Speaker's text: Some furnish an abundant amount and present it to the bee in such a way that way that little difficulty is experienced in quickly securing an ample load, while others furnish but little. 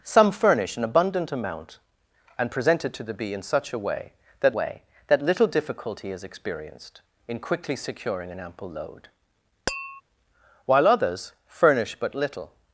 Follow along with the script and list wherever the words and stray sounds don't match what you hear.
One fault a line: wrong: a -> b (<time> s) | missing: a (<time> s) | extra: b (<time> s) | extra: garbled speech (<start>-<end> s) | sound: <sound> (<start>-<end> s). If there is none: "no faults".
sound: tap (9.7-10.0 s)